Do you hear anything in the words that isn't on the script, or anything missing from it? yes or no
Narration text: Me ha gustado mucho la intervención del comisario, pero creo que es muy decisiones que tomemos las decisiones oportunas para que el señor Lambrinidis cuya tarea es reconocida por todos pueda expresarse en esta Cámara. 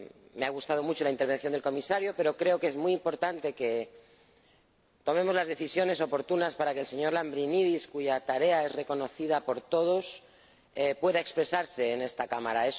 yes